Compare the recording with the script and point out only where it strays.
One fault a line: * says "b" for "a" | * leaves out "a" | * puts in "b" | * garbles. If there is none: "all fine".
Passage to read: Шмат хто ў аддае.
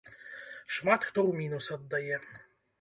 * puts in "мінус"